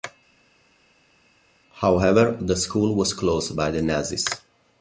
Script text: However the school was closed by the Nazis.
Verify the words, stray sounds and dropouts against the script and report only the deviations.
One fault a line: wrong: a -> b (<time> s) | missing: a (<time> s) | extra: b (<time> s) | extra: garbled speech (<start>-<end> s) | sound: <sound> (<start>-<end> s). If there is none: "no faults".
no faults